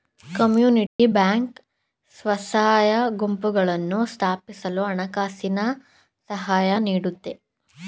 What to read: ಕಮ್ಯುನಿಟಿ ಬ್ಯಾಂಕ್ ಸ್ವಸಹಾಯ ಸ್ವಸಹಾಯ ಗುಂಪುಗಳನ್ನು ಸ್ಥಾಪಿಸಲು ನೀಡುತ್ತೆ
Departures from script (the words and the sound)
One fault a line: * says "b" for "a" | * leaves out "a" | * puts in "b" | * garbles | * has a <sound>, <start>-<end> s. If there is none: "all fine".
* has a dropout, 0.9-1.0 s
* leaves out "ಸ್ವಸಹಾಯ"
* puts in "ಹಣಕಾಸಿನ ಸಹಾಯ"